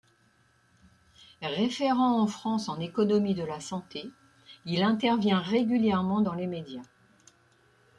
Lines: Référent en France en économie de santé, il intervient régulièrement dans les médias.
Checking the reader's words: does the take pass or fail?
fail